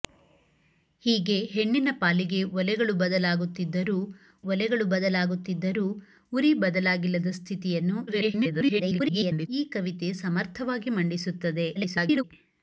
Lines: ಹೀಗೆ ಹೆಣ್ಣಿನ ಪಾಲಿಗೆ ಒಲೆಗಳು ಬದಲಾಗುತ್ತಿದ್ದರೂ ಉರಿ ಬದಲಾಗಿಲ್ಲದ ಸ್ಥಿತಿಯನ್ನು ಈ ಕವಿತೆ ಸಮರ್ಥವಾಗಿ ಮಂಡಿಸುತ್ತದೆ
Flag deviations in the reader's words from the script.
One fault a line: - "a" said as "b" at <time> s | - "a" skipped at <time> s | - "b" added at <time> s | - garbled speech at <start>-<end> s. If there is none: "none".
- "ಒಲೆಗಳು ಬದಲಾಗುತ್ತಿದ್ದರೂ" added at 4.5 s
- garbled speech at 8.1-9.5 s
- garbled speech at 11.8-12.2 s